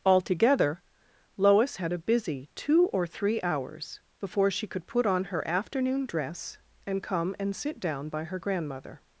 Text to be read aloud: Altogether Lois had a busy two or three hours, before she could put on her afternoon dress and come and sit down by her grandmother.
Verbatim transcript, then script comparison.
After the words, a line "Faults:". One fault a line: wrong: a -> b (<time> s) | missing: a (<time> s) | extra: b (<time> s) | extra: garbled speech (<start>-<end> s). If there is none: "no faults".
Altogether Lois had a busy two or three hours, before she could put on her afternoon dress and come and sit down by her grandmother.
Faults:
no faults